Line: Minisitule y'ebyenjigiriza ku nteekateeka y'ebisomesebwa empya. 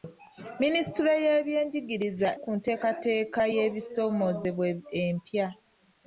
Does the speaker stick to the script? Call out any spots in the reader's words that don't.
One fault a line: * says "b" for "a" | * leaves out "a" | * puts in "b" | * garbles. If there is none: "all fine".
all fine